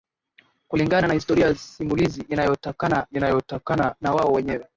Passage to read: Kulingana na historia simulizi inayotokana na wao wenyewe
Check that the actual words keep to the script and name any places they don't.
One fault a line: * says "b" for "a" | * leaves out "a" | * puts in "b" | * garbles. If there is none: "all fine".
* puts in "inayotokana"